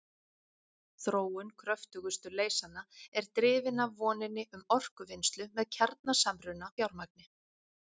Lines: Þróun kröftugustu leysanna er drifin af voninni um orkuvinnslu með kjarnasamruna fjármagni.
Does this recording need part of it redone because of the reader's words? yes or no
no